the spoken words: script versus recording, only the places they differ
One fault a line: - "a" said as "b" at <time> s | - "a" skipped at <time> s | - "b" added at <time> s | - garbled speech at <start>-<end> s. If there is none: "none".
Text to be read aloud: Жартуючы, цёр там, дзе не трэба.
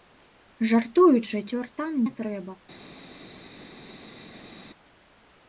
- "дзе" skipped at 1.9 s